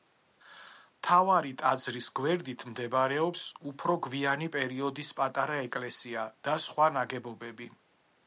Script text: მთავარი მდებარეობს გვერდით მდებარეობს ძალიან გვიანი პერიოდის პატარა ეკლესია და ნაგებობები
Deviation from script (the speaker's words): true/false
true